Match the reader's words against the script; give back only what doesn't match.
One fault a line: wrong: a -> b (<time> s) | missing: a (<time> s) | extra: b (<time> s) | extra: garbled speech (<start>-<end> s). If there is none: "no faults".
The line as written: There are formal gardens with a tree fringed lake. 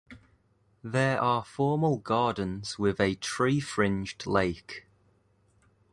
no faults